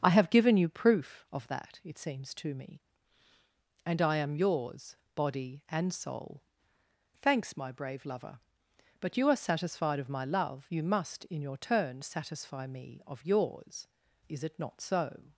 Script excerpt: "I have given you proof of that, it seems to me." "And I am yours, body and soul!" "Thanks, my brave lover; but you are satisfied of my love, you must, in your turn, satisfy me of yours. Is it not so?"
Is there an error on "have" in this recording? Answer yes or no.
no